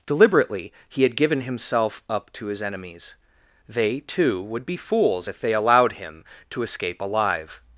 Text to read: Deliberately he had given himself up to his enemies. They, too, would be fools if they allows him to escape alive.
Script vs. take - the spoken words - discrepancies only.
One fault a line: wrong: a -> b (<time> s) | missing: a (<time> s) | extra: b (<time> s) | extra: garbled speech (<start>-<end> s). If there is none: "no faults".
wrong: allows -> allowed (5.5 s)